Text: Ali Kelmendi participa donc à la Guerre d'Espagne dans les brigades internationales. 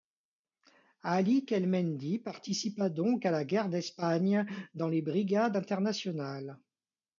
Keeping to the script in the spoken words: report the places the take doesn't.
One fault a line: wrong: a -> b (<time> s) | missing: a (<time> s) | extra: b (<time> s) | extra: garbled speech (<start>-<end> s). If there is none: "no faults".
no faults